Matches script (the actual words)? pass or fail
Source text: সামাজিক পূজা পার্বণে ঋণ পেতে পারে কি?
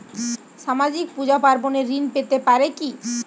pass